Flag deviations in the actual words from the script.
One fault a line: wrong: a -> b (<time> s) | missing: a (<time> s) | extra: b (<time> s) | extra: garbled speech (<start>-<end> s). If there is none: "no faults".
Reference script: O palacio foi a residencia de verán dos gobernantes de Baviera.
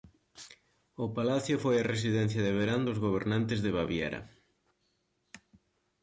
no faults